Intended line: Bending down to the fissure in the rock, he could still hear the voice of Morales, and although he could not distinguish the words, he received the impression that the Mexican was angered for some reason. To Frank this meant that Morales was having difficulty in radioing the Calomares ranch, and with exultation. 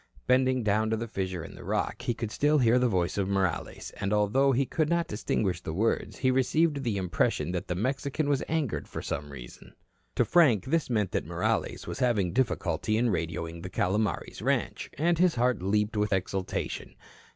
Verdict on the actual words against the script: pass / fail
fail